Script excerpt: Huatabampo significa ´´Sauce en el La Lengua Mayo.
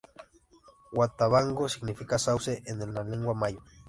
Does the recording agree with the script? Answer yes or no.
yes